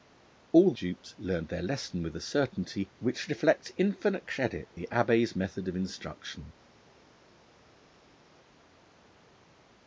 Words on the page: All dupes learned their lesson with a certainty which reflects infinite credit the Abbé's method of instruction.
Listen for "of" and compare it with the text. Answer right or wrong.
right